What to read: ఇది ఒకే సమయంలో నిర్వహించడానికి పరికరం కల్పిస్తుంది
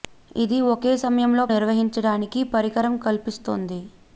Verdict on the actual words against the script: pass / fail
pass